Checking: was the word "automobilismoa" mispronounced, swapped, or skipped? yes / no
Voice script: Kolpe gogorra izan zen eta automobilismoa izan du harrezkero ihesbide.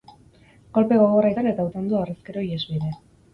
yes